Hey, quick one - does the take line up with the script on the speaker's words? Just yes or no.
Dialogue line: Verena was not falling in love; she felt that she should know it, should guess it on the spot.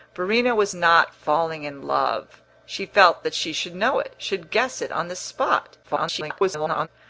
no